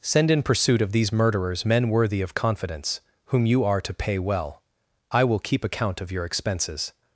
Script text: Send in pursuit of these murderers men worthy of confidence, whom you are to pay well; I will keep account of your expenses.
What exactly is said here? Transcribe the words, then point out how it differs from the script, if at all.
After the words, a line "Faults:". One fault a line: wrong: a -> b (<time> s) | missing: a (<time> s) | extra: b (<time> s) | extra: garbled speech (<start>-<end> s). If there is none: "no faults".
Send in pursuit of these murderers men worthy of confidence, whom you are to pay well; I will keep account of your expenses.
Faults:
no faults